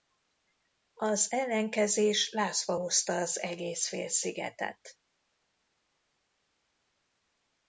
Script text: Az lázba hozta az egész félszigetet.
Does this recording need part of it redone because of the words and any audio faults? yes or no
yes